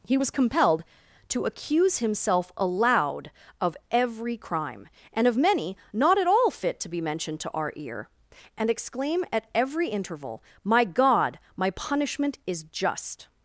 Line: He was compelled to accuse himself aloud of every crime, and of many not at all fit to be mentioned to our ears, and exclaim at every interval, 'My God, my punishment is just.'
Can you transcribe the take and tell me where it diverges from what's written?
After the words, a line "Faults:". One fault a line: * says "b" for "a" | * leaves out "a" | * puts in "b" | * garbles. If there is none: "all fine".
He was compelled to accuse himself aloud of every crime, and of many not at all fit to be mentioned to our ear, and exclaim at every interval, 'My God, my punishment is just.'
Faults:
* says "ear" for "ears"